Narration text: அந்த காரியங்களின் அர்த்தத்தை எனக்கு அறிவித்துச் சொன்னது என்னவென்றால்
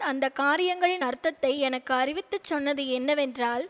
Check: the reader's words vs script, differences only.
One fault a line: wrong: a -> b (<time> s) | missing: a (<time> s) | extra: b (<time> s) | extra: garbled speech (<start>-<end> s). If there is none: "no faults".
no faults